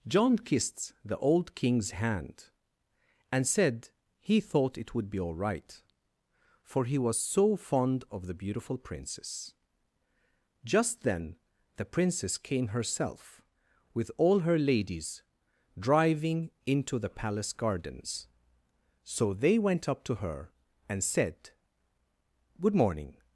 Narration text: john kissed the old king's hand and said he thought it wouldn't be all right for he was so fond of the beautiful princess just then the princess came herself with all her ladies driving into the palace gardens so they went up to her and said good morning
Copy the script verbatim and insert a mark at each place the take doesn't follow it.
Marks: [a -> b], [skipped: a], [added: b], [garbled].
john kissed the old king's hand and said he thought it [wouldn't -> would] be all right for he was so fond of the beautiful princess just then the princess came herself with all her ladies driving into the palace gardens so they went up to her and said good morning